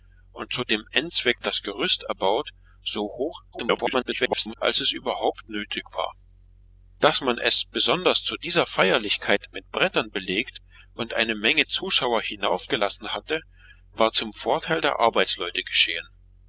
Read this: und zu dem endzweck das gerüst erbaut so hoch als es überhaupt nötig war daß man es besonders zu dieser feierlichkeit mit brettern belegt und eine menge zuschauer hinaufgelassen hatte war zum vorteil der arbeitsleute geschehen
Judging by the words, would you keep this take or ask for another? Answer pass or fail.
fail